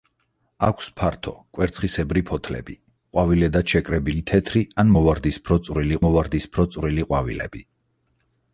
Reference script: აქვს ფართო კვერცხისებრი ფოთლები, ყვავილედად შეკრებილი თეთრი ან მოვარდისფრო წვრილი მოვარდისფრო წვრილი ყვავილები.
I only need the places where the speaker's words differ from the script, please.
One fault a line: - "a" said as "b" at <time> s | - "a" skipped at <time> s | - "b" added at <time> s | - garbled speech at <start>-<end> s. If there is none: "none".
none